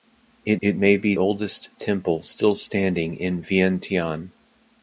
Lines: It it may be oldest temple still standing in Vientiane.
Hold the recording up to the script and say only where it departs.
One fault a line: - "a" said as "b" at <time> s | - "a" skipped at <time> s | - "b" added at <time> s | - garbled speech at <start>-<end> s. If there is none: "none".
none